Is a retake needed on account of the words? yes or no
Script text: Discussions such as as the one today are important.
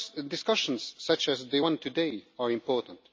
yes